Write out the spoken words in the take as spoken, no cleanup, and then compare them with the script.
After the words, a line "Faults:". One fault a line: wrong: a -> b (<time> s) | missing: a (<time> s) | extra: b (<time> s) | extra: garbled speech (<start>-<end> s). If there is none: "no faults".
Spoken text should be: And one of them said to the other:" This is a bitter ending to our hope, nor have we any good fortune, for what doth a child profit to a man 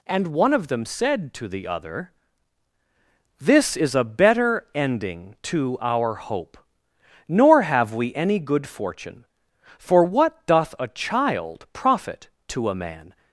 And one of them said to the other:" This is a better ending to our hope, nor have we any good fortune, for what doth a child profit to a man
Faults:
wrong: bitter -> better (4.0 s)